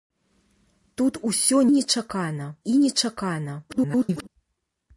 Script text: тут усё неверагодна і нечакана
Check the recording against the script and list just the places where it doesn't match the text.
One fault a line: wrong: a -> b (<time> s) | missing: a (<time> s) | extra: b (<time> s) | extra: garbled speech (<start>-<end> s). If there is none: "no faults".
wrong: неверагодна -> нечакана (1.7 s)
extra: garbled speech (3.7-4.3 s)